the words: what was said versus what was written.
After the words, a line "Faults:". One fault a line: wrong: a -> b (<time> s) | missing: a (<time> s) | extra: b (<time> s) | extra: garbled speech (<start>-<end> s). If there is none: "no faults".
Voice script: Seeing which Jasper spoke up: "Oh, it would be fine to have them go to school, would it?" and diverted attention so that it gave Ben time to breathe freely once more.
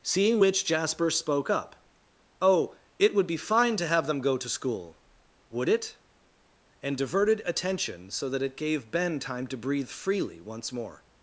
Seeing which Jasper spoke up: "Oh, it would be fine to have them go to school, would it?" and diverted attention so that it gave Ben time to breathe freely once more.
Faults:
no faults